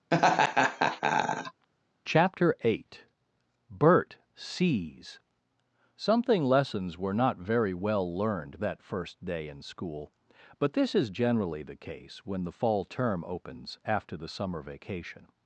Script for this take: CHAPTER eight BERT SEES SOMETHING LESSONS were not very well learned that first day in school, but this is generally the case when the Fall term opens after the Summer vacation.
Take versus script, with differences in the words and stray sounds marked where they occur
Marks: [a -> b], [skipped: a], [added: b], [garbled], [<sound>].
[laugh] CHAPTER eight BERT SEES SOMETHING LESSONS were not very well learned that first day in school, but this is generally the case when the Fall term opens after the Summer vacation.